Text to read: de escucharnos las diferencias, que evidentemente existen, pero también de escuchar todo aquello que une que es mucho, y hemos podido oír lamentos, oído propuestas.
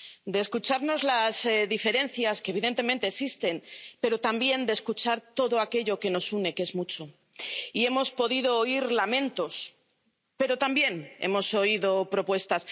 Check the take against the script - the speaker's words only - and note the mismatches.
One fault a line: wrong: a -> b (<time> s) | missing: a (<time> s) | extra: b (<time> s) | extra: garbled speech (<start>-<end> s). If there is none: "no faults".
extra: nos (6.1 s)
extra: pero también hemos (10.4 s)